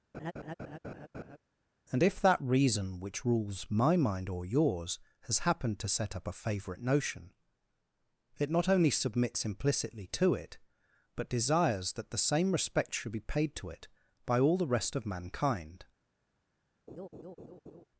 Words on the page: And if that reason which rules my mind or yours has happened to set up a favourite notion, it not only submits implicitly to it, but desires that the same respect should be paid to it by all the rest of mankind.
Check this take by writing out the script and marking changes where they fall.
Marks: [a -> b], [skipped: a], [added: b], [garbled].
And if that reason which rules my mind or yours has happened to set up a favourite notion, it not only submits implicitly to it, but desires that the same respect should be paid to it by all the rest of mankind.